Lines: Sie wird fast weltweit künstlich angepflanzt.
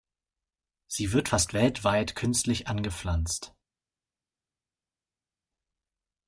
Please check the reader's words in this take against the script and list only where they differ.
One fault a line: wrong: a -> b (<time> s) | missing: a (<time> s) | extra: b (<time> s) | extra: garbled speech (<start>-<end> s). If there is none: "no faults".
no faults